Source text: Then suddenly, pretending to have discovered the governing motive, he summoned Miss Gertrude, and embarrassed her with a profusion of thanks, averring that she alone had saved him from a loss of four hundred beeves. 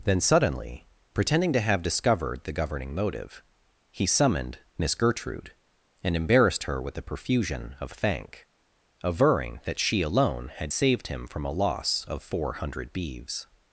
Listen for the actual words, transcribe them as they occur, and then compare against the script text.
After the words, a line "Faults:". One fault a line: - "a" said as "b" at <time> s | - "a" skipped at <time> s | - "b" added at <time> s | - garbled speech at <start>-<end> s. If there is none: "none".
Then suddenly, pretending to have discovered the governing motive, he summoned Miss Gertrude, and embarrassed her with a profusion of thank, averring that she alone had saved him from a loss of four hundred beeves.
Faults:
- "thanks" said as "thank" at 7.9 s